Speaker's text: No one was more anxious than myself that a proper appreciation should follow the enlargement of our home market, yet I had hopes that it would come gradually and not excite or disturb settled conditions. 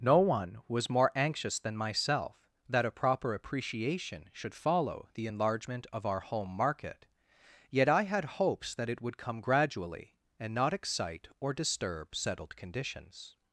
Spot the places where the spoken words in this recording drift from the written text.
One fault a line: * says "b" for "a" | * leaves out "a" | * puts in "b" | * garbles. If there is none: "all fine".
all fine